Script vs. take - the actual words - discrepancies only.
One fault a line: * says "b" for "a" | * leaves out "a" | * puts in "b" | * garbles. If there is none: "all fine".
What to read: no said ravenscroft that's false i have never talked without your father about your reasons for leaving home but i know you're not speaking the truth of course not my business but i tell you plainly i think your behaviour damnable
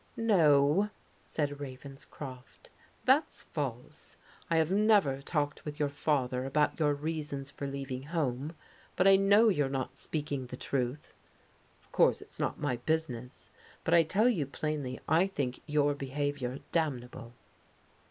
* says "with" for "without"
* puts in "it's"